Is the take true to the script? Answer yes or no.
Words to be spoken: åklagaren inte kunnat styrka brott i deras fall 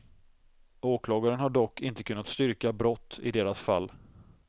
no